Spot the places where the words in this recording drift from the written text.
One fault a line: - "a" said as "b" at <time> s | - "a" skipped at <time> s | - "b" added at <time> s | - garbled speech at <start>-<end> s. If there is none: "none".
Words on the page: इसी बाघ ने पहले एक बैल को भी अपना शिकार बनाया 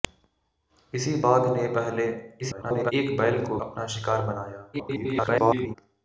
- garbled speech at 2.4-2.9 s
- "भी" skipped at 3.6 s
- garbled speech at 4.7-5.8 s